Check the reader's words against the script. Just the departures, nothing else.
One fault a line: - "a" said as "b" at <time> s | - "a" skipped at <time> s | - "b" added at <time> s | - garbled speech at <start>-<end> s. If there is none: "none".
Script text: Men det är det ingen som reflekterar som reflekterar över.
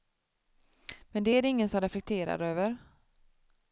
- "som reflekterar" skipped at 2.4 s